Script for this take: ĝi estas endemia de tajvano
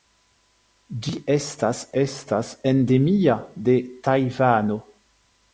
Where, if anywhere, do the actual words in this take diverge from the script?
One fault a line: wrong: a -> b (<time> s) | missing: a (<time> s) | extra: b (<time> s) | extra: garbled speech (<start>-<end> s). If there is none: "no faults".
extra: estas (2.0 s)